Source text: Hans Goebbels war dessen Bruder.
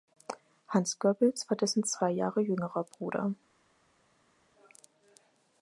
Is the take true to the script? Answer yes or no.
no